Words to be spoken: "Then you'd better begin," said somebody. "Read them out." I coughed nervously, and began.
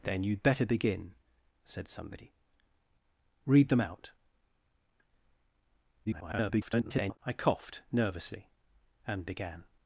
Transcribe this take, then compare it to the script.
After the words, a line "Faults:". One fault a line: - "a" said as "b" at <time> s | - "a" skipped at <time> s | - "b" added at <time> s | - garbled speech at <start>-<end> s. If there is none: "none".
"Then you'd better begin," said somebody. "Read them out." [garbled] I coughed nervously, and began.
Faults:
- garbled speech at 6.0-7.2 s